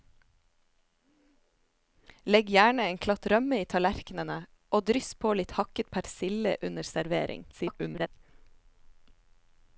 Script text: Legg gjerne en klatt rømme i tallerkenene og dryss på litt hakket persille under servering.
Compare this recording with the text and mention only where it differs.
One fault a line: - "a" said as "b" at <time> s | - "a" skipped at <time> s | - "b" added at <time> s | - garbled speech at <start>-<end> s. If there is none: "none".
- garbled speech at 7.5-8.1 s